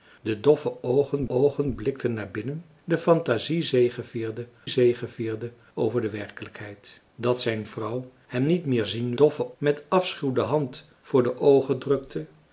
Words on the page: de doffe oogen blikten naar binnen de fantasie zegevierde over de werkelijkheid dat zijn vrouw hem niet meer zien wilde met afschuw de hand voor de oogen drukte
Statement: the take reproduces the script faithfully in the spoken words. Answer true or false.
false